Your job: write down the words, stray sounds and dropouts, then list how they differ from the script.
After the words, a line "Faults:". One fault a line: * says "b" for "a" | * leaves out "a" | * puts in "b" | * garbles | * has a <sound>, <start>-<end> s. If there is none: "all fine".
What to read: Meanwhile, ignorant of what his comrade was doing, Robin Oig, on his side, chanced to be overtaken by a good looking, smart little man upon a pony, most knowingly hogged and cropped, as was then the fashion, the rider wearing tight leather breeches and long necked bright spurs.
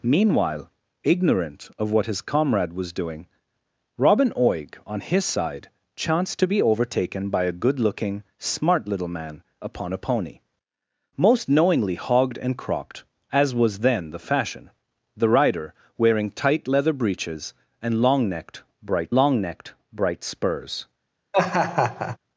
Meanwhile, ignorant of what his comrade was doing, Robin Oig, on his side, chanced to be overtaken by a good looking, smart little man upon a pony, most knowingly hogged and cropped, as was then the fashion, the rider wearing tight leather breeches and long necked bright long necked bright spurs.
Faults:
* puts in "long necked bright"
* has a laugh, 21.3-22.2 s